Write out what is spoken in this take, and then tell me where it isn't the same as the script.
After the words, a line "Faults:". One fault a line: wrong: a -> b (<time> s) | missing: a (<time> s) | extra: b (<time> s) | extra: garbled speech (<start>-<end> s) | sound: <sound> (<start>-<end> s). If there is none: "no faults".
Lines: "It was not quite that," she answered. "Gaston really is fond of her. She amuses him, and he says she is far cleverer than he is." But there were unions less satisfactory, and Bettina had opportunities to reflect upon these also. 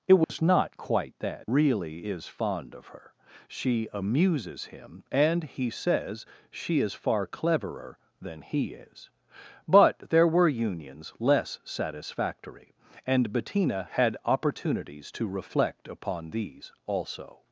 "It was not quite that," really is fond of her. She amuses him, and he says she is far cleverer than he is." But there were unions less satisfactory, and Bettina had opportunities to reflect upon these also.
Faults:
sound: dropout (0.2-0.3 s)
missing: she answered Gaston (1.5 s)